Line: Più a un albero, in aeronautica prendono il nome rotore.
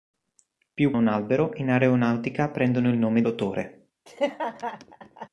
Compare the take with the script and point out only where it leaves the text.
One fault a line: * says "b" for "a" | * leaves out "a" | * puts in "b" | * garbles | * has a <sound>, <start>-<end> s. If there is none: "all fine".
* has a laugh, 4.1-5.3 s